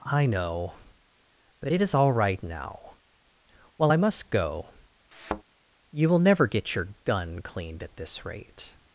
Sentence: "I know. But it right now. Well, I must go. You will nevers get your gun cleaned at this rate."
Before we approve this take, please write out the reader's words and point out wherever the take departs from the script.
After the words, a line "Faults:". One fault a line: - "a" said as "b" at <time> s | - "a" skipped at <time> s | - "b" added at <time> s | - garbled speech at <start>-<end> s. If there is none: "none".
"I know. But it is all right now. Well, I must go. You will never get your gun cleaned at this rate."
Faults:
- "is all" added at 1.8 s
- "nevers" said as "never" at 6.2 s